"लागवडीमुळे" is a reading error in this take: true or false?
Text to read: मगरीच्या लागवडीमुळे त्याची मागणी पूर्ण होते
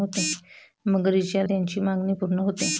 true